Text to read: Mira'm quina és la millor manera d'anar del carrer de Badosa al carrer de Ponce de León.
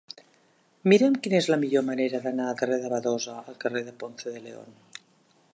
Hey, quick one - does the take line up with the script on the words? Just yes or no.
no